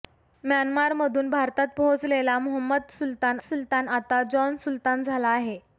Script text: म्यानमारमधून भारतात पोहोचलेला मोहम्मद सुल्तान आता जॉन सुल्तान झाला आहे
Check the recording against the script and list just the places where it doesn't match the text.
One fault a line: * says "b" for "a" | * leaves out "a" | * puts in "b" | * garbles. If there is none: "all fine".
* puts in "सुल्तान"